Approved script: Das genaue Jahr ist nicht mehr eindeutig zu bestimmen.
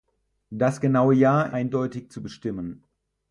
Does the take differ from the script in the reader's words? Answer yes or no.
yes